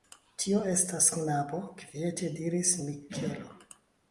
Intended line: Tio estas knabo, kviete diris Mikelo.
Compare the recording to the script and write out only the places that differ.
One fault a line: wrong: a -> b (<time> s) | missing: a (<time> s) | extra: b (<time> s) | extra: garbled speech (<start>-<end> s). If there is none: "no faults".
no faults